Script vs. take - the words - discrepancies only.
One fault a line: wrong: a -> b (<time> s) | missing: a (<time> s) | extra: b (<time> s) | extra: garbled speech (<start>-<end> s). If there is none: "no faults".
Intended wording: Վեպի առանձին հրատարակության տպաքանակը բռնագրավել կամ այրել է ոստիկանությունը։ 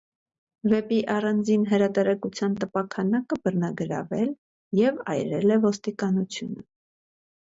wrong: կամ -> և (4.8 s)